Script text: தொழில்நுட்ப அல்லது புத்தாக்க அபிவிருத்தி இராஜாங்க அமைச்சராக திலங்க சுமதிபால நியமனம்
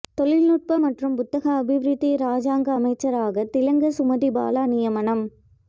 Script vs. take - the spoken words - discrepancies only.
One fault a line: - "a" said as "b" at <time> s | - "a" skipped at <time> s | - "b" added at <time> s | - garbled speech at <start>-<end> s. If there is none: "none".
- "அல்லது" said as "மற்றும்" at 0.8 s